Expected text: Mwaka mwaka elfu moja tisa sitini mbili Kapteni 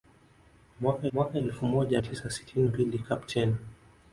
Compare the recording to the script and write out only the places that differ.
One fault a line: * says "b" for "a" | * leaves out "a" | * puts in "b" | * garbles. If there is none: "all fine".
all fine